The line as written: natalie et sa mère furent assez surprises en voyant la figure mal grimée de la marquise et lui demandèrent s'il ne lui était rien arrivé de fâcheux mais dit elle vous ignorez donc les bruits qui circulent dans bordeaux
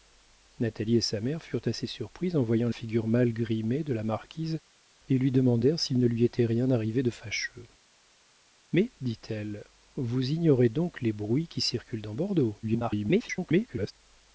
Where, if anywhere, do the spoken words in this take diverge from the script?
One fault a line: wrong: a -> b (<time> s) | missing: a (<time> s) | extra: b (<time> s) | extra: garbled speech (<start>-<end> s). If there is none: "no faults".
missing: la (2.7 s)
extra: garbled speech (12.6-13.9 s)